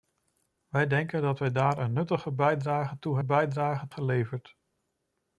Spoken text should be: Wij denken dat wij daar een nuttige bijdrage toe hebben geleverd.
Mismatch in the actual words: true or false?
true